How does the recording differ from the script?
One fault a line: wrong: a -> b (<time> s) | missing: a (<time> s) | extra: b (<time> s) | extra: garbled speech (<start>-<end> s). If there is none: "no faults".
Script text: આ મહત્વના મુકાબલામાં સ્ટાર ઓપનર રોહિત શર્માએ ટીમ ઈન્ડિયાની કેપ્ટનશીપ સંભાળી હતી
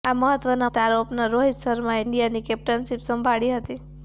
missing: મુકાબલામાં (0.7 s)
missing: ટીમ (2.0 s)